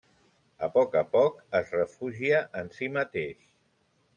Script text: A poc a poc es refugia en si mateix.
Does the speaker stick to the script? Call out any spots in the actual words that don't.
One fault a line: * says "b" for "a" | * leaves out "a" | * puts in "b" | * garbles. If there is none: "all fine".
all fine